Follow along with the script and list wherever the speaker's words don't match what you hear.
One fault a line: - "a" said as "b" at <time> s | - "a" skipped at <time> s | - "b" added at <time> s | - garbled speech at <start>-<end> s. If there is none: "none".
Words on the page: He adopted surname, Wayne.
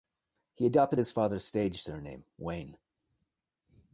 - "his father's stage" added at 1.0 s